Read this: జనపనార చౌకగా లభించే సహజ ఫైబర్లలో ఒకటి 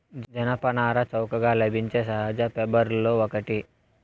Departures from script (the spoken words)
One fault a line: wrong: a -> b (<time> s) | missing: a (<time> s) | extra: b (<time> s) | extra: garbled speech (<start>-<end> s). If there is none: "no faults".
no faults